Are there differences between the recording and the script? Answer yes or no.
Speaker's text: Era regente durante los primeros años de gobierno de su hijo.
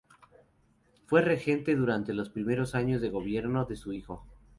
yes